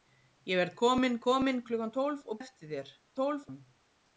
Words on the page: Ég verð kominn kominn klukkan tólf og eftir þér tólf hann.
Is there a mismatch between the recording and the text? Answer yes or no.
no